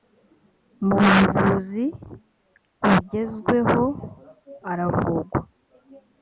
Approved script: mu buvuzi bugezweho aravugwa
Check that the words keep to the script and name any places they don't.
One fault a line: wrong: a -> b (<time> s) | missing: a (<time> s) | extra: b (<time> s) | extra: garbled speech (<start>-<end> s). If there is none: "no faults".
no faults